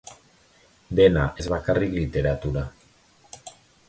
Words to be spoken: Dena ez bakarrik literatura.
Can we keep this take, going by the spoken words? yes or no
yes